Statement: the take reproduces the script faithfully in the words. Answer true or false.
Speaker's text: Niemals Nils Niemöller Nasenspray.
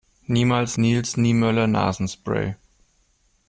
true